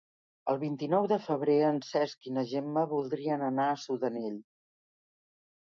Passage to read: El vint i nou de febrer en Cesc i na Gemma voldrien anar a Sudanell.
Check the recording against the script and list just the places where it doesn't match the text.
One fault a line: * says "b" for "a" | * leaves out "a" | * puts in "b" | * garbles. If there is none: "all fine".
all fine